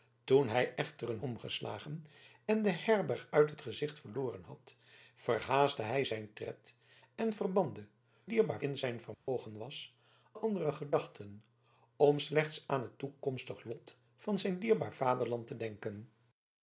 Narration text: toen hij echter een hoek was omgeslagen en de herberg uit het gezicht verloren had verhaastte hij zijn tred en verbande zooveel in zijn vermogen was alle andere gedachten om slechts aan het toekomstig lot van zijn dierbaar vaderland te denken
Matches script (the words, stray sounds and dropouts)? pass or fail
fail